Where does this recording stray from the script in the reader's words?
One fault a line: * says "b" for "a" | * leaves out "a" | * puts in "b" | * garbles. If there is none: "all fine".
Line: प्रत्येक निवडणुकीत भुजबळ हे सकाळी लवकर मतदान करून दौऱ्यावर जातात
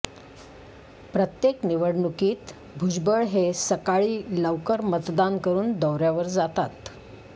all fine